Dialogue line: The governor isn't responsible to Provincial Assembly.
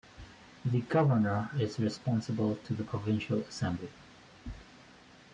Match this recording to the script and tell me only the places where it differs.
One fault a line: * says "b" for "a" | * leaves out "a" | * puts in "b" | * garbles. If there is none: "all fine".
* says "is" for "isn't"
* puts in "the"